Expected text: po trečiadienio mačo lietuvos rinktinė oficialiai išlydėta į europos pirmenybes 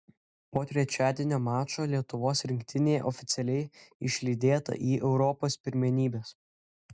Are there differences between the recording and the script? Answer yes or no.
no